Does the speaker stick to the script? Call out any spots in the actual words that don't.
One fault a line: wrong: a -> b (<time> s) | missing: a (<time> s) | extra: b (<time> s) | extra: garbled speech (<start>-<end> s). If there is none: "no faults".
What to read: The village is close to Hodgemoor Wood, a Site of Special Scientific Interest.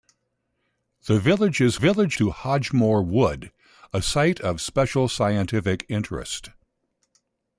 wrong: close -> village (1.8 s)